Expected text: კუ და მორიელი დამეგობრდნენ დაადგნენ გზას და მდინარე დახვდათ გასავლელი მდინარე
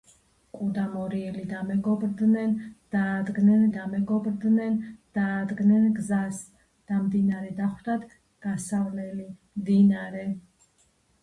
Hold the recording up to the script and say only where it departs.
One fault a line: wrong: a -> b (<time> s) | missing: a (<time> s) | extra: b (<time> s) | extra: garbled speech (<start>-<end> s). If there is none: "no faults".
extra: დამეგობრდნენ დაადგნენ (3.7 s)